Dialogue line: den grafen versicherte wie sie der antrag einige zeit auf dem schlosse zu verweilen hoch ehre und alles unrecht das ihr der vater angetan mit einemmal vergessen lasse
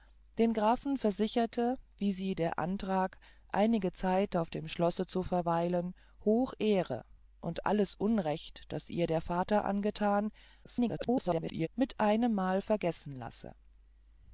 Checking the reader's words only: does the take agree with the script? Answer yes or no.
no